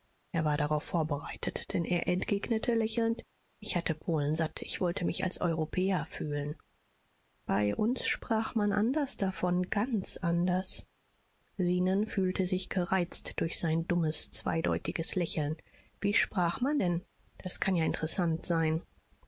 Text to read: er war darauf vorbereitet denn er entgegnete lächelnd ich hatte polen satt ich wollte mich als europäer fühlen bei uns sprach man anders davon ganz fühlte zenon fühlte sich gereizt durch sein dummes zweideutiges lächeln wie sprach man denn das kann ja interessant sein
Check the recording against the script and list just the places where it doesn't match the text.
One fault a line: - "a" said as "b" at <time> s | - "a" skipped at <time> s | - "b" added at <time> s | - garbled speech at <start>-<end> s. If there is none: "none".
- "fühlte" said as "anders" at 10.2 s